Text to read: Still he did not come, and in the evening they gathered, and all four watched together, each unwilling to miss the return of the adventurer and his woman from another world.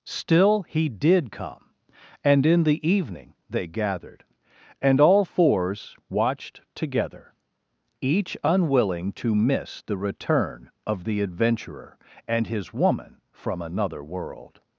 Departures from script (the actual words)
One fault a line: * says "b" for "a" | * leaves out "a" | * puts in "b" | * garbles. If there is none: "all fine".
* leaves out "not"
* says "fours" for "four"